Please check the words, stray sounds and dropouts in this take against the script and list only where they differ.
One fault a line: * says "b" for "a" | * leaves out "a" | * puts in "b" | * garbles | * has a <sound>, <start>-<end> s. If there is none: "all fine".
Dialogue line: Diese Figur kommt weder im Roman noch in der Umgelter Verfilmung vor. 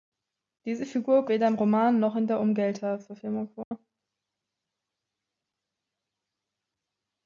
* leaves out "kommt"
* has a dropout, 3.6-3.7 s